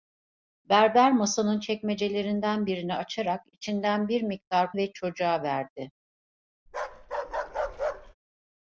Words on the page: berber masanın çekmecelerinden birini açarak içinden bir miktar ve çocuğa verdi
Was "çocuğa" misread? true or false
false